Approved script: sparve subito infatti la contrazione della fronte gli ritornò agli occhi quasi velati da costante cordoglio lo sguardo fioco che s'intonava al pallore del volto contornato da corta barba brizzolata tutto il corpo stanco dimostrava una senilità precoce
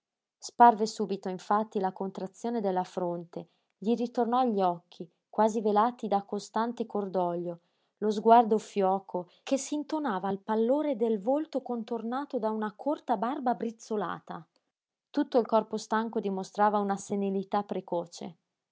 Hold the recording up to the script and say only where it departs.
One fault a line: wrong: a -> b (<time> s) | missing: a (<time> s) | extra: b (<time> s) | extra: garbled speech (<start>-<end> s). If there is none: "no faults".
extra: una (12.5 s)